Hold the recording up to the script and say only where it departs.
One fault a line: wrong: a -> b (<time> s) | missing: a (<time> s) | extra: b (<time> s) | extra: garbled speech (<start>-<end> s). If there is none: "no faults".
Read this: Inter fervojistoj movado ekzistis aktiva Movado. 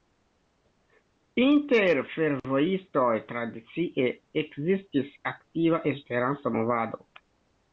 wrong: movado -> tradicie (3.3 s)
extra: Esperanto (5.9 s)